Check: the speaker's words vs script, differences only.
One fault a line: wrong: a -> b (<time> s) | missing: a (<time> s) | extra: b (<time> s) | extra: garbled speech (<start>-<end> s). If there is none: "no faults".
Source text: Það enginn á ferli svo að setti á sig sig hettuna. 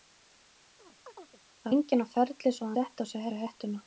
no faults